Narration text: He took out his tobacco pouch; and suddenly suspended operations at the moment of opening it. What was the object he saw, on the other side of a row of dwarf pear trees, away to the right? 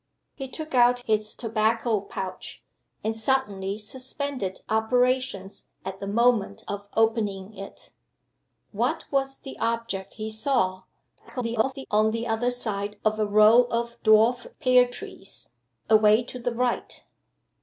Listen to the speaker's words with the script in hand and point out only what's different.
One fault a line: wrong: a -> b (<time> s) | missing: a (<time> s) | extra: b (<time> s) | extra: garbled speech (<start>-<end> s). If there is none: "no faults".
extra: garbled speech (11.2-11.9 s)